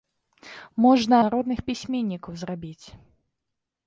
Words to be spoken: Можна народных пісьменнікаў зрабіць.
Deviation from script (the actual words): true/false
false